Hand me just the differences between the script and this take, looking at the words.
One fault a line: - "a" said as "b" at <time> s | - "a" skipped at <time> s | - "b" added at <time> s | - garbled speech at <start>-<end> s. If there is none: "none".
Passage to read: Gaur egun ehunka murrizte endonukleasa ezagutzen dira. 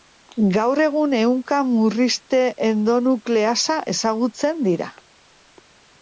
none